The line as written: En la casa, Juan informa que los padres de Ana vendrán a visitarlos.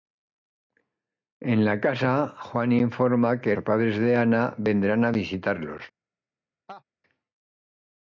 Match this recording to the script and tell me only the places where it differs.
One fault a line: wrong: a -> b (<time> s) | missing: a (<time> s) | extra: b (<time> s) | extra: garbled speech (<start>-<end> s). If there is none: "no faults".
missing: los (3.5 s)